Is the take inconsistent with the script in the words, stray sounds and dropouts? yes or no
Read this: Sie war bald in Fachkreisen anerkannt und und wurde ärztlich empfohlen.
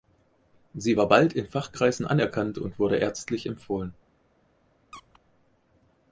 yes